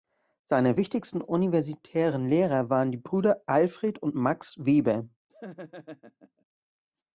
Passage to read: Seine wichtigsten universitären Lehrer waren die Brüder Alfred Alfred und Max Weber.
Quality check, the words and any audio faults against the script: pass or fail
fail